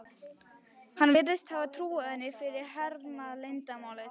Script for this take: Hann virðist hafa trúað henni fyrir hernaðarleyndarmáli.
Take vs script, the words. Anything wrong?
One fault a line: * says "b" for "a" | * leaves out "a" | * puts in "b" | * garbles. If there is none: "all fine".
all fine